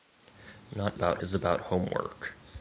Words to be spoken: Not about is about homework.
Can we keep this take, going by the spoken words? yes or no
yes